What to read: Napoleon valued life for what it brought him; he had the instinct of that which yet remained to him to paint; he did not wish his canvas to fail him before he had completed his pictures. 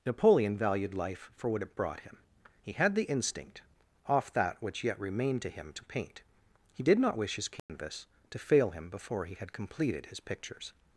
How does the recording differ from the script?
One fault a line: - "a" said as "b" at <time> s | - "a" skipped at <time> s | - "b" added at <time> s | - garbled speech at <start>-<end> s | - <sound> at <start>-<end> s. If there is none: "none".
- "of" said as "off" at 4.1 s
- dropout at 7.6-7.7 s